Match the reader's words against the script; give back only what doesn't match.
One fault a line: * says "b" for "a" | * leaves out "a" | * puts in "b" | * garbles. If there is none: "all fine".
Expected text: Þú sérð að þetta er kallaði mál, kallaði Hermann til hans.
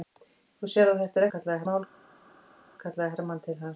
all fine